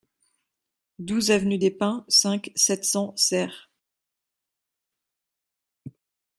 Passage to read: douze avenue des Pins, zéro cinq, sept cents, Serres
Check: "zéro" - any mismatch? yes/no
yes